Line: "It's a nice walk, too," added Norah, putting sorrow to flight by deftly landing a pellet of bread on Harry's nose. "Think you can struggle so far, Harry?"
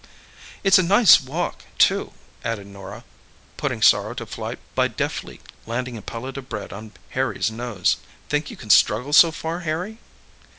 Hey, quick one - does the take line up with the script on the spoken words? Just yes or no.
yes